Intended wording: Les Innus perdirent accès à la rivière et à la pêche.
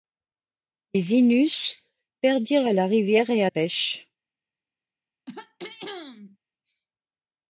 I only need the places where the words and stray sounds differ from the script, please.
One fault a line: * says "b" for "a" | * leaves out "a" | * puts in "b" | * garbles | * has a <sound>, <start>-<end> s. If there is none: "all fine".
* leaves out "accès"
* leaves out "la"
* has a throat clearing, 5.3-6.4 s